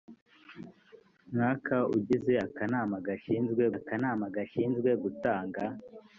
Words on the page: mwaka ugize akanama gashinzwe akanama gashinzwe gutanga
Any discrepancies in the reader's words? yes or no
no